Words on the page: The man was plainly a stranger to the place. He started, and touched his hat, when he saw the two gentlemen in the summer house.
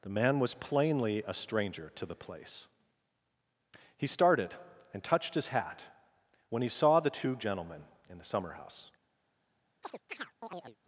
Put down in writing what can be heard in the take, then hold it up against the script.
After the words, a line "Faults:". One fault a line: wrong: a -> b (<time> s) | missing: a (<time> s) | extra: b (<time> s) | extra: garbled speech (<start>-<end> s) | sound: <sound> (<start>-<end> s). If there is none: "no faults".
The man was plainly a stranger to the place. He started, and touched his hat, when he saw the two gentlemen in the summer house.
Faults:
sound: chirp (9.8-10.8 s)